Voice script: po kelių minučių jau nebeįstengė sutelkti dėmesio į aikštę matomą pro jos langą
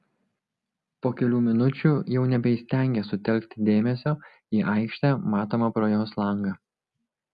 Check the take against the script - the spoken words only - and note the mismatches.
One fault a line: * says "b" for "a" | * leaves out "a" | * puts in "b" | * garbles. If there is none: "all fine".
all fine